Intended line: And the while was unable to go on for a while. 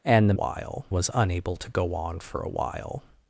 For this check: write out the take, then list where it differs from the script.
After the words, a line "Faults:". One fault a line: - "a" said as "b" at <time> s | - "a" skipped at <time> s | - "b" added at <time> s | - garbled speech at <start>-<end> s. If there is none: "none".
And the while was unable to go on for a while.
Faults:
none